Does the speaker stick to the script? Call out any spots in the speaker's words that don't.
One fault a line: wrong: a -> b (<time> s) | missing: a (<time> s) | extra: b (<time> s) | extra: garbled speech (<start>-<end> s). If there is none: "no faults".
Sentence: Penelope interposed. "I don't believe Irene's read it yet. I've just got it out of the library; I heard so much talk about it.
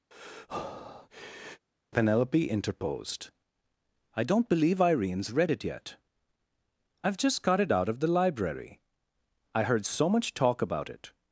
no faults